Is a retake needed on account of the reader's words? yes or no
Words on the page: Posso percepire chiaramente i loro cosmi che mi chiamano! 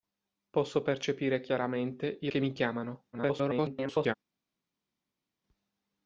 yes